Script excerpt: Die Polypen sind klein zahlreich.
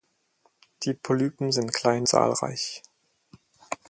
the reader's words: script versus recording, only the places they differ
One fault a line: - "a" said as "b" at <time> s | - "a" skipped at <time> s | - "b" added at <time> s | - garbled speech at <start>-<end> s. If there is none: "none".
none